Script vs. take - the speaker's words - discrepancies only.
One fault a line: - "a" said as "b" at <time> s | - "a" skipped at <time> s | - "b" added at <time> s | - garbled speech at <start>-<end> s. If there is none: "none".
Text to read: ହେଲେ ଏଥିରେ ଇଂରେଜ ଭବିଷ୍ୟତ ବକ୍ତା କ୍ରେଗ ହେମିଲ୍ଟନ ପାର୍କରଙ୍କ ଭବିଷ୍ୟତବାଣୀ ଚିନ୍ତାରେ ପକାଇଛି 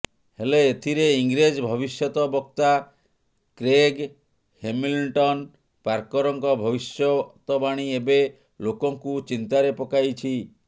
- "ଏବେ ଲୋକଙ୍କୁ" added at 8.0 s